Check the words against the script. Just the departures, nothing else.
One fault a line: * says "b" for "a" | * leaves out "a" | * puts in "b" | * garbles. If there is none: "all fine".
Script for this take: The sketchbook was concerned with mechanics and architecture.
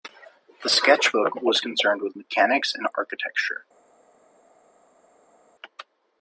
all fine